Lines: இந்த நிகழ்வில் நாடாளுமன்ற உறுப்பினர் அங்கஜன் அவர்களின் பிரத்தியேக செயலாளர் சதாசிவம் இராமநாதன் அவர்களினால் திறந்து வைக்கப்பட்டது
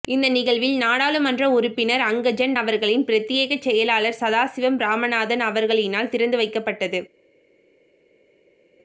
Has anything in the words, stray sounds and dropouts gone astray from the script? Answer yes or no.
no